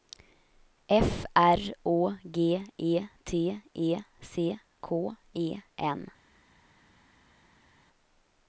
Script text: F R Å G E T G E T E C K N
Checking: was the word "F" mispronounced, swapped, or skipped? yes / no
no